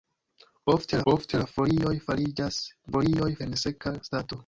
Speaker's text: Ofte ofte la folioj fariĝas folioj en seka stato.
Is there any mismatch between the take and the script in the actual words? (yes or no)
no